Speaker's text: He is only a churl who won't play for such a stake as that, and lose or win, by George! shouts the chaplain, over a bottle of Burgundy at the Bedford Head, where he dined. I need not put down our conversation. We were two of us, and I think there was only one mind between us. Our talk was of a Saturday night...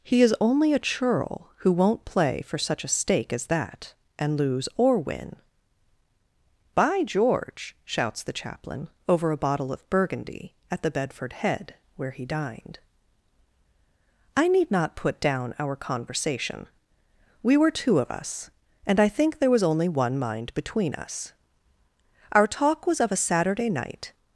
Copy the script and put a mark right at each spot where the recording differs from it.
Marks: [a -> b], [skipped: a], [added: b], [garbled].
He is only a churl who won't play for such a stake as that, and lose or win, by George! shouts the chaplain, over a bottle of Burgundy at the Bedford Head, where he dined. I need not put down our conversation. We were two of us, and I think there was only one mind between us. Our talk was of a Saturday night...